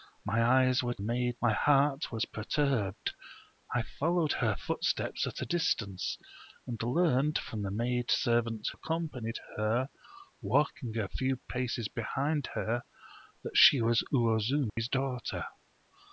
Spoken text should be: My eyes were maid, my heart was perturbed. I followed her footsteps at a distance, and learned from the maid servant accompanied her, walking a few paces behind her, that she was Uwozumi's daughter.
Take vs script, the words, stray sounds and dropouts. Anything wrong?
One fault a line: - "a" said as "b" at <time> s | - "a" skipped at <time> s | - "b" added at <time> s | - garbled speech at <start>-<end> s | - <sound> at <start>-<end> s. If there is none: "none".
- dropout at 14.7-14.8 s